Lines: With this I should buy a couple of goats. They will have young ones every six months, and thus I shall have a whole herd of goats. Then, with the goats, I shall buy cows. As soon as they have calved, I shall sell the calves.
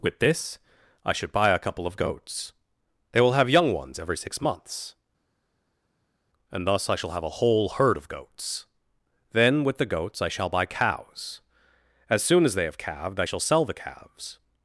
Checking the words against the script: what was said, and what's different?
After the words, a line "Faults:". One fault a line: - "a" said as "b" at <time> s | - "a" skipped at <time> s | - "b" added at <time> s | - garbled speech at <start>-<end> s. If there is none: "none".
With this I should buy a couple of goats. They will have young ones every six months, and thus I shall have a whole herd of goats. Then, with the goats, I shall buy cows. As soon as they have calved, I shall sell the calves.
Faults:
none